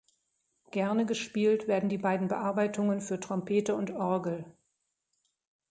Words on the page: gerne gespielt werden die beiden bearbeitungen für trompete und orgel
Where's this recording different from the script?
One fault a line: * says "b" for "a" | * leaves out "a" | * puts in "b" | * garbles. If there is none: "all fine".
all fine